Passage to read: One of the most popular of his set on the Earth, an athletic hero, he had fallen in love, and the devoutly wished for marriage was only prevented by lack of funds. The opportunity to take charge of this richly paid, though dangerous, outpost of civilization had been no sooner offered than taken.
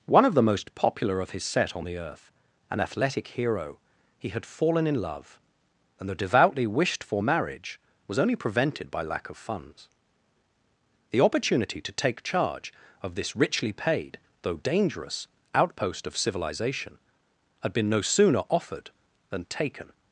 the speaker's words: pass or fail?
pass